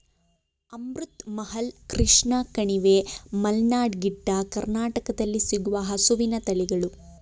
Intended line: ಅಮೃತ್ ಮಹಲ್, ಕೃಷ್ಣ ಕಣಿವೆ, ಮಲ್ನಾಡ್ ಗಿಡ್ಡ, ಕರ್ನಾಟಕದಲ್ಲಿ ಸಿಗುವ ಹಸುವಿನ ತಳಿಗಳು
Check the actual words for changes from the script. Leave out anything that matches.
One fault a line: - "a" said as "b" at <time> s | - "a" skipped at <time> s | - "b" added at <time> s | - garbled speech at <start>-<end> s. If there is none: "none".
none